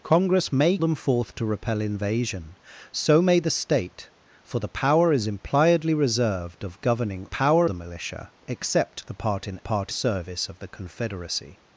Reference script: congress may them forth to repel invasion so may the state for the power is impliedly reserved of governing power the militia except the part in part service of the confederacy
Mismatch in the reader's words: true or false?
false